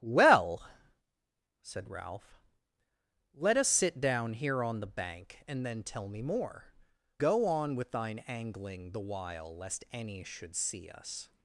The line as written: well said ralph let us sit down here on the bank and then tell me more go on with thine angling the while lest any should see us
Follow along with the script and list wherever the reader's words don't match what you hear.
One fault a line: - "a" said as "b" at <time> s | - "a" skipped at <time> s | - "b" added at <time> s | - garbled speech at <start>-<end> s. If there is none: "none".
none